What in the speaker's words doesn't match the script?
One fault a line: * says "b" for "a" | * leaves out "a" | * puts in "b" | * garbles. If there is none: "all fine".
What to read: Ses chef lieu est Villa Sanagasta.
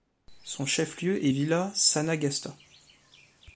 * says "Son" for "Ses"